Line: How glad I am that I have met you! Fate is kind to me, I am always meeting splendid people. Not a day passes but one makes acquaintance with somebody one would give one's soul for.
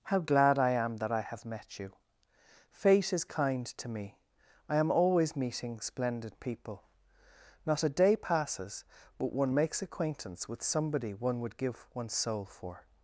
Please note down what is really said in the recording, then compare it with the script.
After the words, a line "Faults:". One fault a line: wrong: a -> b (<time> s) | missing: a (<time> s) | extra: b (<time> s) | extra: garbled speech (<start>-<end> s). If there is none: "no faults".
How glad I am that I have met you! Fate is kind to me, I am always meeting splendid people. Not a day passes but one makes acquaintance with somebody one would give one's soul for.
Faults:
no faults